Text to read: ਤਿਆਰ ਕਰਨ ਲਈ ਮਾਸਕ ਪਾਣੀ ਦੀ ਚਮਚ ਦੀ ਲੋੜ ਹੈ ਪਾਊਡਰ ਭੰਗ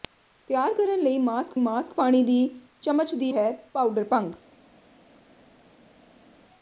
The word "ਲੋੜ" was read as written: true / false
false